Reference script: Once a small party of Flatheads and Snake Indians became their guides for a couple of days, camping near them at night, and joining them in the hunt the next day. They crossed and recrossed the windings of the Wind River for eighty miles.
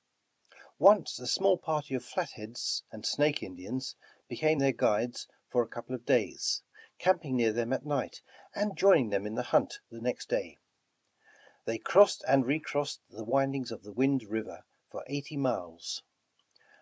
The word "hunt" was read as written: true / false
true